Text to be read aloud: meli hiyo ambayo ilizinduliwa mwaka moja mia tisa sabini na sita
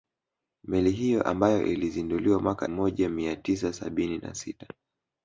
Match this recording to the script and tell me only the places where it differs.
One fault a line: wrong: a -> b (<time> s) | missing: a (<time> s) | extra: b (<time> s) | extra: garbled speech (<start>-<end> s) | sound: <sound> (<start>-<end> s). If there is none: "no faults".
no faults